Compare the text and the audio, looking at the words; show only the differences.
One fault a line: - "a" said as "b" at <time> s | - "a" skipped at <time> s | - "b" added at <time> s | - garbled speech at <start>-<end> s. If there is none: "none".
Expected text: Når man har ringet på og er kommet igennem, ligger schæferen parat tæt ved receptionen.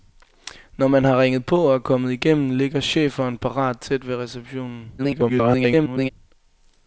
- garbled speech at 5.0-6.1 s